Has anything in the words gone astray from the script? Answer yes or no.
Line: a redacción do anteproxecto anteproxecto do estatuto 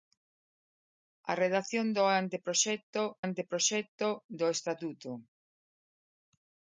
no